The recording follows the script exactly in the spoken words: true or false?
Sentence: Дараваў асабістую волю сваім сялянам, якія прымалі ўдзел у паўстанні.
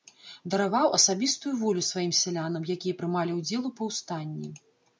true